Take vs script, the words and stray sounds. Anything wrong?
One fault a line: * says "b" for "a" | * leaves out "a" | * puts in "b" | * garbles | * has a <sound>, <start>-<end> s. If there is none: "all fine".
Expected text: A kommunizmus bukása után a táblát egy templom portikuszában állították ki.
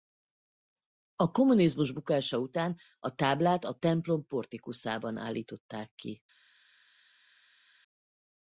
* says "a" for "egy"